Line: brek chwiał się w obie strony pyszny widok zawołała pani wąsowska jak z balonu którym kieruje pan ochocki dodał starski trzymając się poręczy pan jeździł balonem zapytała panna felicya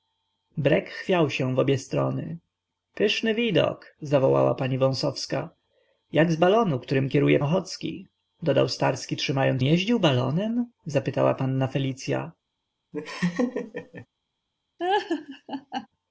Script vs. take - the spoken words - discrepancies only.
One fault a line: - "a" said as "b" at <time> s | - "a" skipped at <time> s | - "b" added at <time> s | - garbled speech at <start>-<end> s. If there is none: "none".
- "pan" skipped at 7.4 s
- "się poręczy pan" skipped at 9.6 s